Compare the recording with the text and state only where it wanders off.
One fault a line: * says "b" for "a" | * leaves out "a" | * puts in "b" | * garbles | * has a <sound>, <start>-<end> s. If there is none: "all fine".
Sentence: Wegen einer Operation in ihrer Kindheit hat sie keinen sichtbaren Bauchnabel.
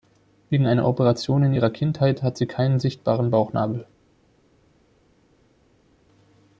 all fine